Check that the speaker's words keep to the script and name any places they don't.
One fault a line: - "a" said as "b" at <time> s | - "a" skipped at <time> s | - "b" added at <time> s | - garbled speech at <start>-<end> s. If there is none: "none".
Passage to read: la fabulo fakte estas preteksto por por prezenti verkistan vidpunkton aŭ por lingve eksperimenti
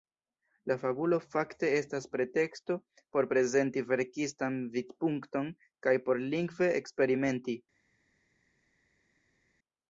- "por" skipped at 3.3 s
- "aŭ" said as "kaj" at 5.9 s